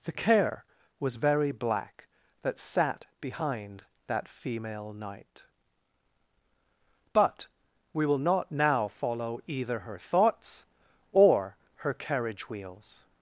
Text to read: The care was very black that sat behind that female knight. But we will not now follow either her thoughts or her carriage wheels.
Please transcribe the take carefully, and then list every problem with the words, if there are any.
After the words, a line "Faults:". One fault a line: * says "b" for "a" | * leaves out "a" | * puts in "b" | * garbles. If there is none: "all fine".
The care was very black that sat behind that female knight. But we will not now follow either her thoughts or her carriage wheels.
Faults:
all fine